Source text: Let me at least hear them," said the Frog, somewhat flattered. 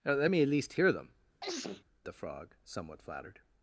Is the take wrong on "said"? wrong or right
wrong